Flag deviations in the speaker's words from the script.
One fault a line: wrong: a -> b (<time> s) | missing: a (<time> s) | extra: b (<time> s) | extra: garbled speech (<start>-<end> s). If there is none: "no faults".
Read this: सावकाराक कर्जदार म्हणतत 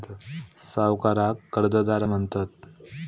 no faults